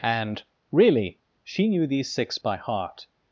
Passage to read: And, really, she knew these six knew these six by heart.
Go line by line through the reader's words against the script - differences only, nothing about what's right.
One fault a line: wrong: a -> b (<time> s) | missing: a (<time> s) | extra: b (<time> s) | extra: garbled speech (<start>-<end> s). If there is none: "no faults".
missing: knew these six (2.4 s)